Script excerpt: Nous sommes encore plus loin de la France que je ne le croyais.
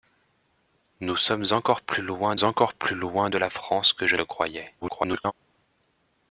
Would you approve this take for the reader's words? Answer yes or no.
no